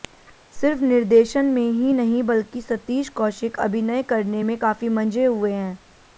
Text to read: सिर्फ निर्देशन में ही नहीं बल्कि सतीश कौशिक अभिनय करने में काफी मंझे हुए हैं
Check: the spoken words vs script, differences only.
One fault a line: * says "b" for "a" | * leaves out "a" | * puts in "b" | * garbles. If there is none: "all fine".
all fine